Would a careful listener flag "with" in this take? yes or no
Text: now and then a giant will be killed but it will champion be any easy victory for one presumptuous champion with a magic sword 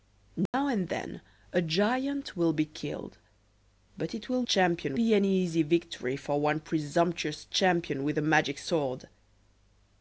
no